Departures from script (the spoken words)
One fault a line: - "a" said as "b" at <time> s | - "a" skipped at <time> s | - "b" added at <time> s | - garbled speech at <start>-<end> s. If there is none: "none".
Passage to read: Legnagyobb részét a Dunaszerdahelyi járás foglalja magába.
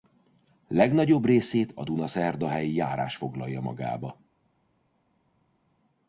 none